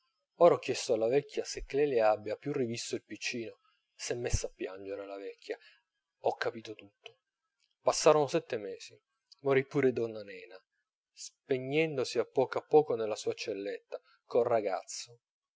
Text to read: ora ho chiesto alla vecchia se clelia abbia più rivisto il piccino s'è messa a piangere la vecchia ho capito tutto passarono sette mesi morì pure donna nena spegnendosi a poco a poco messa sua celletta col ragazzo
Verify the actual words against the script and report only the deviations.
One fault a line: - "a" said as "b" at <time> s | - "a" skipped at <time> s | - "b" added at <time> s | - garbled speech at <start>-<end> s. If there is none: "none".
- "messa" said as "nella" at 13.0 s